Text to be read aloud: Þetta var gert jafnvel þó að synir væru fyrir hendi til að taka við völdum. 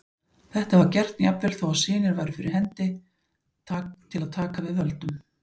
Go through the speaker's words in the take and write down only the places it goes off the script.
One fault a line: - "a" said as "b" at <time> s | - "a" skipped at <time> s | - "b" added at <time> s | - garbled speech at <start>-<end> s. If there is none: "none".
none